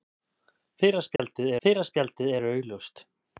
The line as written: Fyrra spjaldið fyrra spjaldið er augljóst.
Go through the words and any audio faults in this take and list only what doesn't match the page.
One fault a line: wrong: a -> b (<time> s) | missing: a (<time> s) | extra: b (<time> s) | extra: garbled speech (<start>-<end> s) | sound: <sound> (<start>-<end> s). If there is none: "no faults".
sound: dropout (1.2-1.2 s)